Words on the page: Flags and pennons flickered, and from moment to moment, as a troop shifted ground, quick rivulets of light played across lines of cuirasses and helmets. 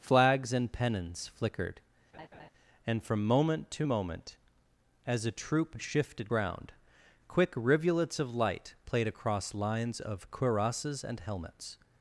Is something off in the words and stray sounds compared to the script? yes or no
yes